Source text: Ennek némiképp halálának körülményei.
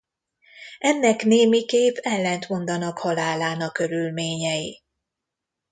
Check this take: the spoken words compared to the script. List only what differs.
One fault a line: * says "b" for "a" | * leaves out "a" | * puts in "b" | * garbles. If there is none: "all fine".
* puts in "ellentmondanak"